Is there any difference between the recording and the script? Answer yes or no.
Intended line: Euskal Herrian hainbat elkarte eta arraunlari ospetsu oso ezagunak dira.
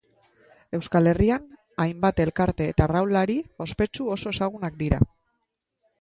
no